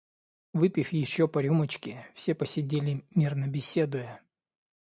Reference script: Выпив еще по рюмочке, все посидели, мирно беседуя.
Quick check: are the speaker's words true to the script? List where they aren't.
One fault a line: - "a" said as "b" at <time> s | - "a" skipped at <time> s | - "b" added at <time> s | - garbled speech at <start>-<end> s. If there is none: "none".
none